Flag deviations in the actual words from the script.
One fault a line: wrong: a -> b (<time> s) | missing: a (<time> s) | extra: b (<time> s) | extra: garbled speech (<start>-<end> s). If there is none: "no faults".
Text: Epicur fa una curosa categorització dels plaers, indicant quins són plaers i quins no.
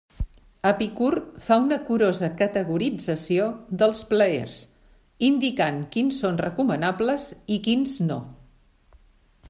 wrong: plaers -> recomanables (6.5 s)